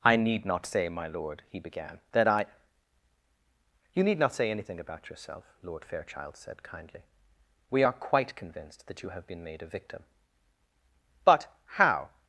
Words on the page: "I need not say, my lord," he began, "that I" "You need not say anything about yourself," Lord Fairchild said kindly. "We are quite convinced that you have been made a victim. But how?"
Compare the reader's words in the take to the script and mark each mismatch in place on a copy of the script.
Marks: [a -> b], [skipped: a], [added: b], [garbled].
"I need not say, my lord," he began, "that I" "You need not say anything about yourself," Lord Fairchild said kindly. "We are quite convinced that you have been made a victim. But how?"